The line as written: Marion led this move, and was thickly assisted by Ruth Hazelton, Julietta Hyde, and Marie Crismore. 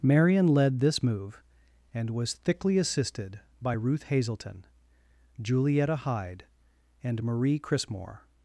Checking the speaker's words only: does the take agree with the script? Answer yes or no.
yes